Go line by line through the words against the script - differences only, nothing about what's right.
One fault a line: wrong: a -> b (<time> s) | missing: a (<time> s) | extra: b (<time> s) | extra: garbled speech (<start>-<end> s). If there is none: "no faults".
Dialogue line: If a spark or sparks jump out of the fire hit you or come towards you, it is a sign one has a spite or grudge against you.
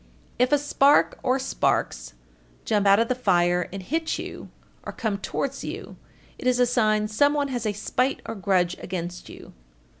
extra: and (3.7 s)
extra: some (7.1 s)